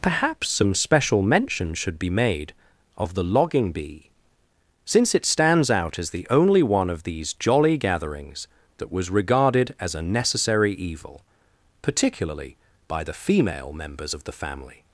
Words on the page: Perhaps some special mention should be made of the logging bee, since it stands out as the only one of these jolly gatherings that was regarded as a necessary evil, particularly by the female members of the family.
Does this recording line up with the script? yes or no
yes